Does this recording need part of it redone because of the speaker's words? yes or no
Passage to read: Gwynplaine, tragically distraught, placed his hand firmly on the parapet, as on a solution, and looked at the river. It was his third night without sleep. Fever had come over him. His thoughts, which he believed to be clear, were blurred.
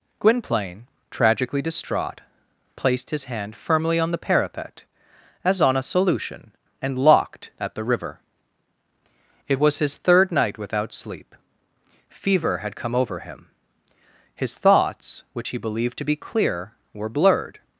yes